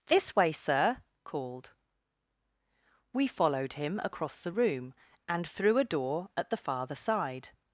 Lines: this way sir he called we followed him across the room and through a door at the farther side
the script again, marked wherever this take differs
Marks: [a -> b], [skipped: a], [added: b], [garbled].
this way sir [skipped: he] called we followed him across the room and through a door at the farther side